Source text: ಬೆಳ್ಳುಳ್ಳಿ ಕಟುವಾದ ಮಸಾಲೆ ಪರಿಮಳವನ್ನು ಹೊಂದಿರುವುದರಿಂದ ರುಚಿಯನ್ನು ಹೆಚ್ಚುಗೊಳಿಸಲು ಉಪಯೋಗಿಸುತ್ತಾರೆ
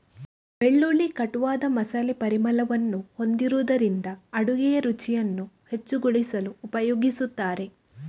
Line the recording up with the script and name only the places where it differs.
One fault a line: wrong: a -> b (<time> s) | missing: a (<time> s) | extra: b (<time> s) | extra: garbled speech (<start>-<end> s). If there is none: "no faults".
extra: ಅಡುಗೆಯ (4.3 s)